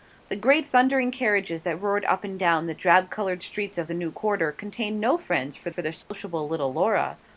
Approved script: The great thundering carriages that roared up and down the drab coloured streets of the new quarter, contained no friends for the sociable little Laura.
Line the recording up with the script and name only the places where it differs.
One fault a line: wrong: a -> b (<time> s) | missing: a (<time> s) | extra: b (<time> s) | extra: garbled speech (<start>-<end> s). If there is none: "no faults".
extra: for (5.7 s)